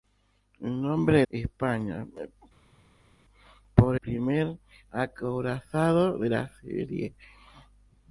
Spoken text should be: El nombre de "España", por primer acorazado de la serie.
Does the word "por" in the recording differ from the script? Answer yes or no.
no